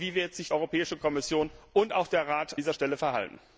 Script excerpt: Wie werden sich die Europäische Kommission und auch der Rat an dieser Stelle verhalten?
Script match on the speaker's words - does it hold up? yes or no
no